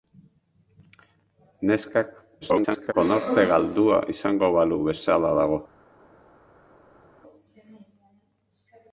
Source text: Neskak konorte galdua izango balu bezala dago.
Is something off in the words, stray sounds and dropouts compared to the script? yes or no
yes